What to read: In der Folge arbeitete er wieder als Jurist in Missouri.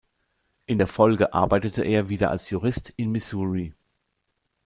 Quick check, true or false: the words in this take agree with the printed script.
true